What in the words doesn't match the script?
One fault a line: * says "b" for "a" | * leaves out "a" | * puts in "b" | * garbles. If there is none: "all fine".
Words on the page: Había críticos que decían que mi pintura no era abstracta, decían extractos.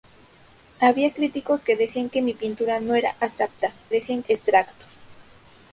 all fine